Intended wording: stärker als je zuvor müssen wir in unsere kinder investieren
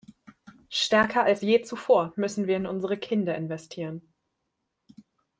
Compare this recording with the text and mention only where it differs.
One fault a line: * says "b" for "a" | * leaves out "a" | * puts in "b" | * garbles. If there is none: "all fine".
all fine